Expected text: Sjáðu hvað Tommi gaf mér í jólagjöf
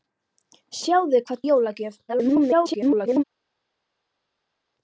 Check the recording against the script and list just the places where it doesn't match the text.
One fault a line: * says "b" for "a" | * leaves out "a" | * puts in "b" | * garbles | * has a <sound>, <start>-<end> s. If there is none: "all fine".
* leaves out "Tommi gaf mér"
* garbles